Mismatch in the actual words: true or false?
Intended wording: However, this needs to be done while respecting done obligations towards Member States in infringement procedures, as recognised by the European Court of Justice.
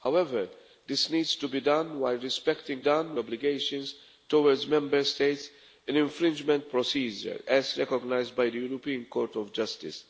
false